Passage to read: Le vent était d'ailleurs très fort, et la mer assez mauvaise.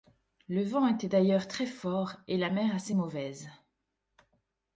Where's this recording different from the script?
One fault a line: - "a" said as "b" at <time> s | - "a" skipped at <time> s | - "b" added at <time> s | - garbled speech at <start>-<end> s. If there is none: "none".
none